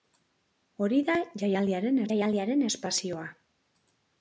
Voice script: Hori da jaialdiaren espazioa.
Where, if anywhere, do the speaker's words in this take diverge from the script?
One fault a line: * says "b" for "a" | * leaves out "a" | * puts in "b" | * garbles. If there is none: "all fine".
* puts in "jaialdiaren"